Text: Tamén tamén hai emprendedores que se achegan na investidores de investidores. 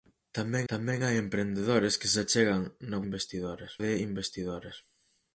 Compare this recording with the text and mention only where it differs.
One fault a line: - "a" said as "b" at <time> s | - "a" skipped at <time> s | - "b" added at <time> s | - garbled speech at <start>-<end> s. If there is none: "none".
none